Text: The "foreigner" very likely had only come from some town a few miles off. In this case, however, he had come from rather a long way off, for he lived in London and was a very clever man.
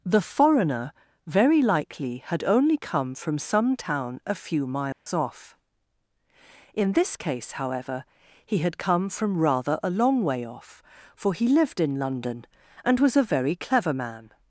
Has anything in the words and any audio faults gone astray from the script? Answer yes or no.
yes